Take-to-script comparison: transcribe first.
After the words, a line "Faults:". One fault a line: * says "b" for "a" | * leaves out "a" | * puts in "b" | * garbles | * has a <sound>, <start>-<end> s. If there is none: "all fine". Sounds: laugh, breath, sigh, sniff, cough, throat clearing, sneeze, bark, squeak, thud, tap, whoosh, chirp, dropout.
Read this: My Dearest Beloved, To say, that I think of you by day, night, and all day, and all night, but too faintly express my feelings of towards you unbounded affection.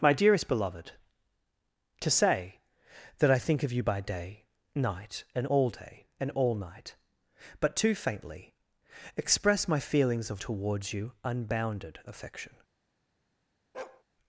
My Dearest Beloved, To say, that I think of you by day, night, and all day, and all night, but too faintly express my feelings of towards you unbounded affection.
Faults:
* has a bark, 13.7-14.0 s